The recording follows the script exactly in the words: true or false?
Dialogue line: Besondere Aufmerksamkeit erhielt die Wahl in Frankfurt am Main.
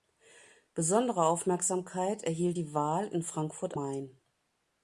false